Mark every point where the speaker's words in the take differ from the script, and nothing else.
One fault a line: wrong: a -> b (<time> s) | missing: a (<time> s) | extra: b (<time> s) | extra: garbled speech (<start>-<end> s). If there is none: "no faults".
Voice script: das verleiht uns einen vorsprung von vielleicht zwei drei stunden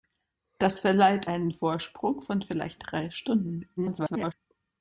missing: uns (1.3 s)
missing: zwei (2.8 s)
extra: garbled speech (3.8-4.3 s)